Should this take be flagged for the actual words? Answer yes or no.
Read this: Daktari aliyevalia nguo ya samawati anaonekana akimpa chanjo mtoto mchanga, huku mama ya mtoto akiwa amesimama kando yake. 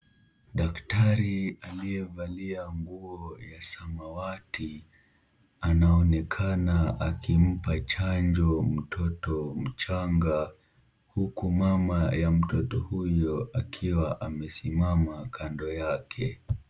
yes